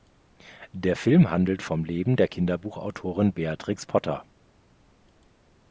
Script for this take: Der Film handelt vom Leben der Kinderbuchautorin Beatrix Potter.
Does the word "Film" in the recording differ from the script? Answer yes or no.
no